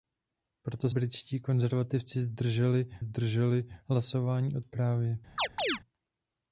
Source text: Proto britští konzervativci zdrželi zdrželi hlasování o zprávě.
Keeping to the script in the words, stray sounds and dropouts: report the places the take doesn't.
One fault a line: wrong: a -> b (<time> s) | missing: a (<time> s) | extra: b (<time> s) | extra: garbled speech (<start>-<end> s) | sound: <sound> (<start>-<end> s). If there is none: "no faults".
sound: chirp (5.4-5.8 s)